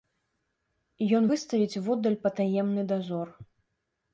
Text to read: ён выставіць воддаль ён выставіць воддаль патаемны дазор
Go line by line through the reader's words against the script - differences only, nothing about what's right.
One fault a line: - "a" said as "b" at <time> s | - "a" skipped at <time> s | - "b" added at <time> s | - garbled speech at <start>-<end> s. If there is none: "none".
- "ён выставіць воддаль" skipped at 2.2 s